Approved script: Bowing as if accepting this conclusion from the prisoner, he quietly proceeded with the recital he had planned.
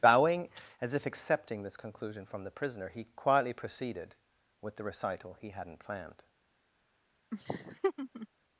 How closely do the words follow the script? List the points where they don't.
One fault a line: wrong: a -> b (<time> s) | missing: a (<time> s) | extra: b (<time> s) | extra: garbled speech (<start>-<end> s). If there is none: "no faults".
wrong: had -> hadn't (5.5 s)